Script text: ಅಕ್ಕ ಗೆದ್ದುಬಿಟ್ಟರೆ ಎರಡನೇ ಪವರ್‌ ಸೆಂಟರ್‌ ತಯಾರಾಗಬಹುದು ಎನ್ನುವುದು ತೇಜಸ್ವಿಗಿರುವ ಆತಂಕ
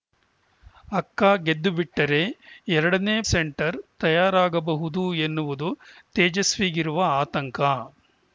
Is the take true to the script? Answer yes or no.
no